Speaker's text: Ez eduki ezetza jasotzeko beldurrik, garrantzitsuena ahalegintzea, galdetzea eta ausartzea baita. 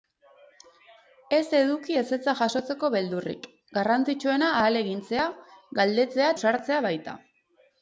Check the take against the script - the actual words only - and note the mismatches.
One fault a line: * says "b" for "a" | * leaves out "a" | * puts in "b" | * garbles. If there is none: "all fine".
* leaves out "eta"